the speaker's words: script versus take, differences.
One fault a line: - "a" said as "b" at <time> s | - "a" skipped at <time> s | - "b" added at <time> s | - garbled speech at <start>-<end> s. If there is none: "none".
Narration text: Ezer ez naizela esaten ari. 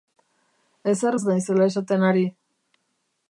none